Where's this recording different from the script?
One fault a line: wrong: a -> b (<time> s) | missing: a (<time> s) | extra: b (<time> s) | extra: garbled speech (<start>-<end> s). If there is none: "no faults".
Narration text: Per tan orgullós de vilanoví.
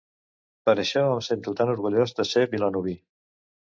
extra: això em sento (0.8 s)
extra: ser (2.3 s)